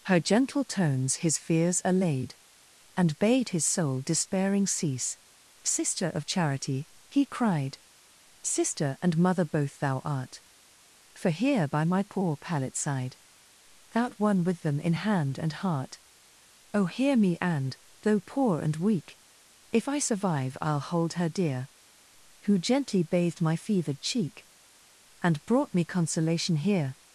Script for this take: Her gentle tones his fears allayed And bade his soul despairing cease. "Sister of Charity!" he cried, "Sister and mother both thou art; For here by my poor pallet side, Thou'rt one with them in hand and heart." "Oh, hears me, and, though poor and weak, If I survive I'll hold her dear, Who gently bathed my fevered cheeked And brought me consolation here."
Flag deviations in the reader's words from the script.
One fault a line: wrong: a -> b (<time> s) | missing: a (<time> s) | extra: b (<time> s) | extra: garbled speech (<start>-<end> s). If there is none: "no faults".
wrong: hears -> hear (16.8 s)
wrong: cheeked -> cheek (24.0 s)